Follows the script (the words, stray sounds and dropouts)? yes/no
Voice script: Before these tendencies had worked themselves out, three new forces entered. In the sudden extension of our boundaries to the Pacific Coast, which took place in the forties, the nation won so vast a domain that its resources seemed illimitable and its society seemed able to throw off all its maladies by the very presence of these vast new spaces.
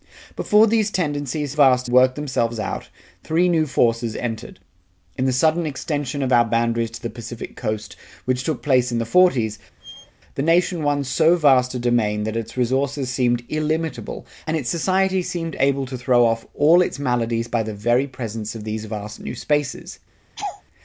no